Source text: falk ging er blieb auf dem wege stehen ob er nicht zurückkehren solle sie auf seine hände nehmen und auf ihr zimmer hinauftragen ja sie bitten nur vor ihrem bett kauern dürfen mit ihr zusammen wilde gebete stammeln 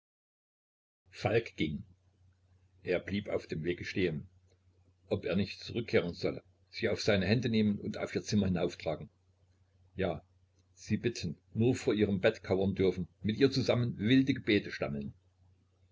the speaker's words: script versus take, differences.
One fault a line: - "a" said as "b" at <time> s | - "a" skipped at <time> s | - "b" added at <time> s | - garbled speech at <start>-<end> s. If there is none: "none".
none